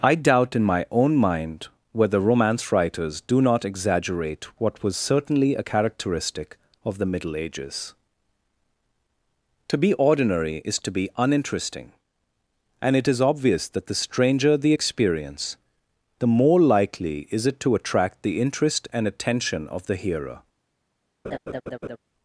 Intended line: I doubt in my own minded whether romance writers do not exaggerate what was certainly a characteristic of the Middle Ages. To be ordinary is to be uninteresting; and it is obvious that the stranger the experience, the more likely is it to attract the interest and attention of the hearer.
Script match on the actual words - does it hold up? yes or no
no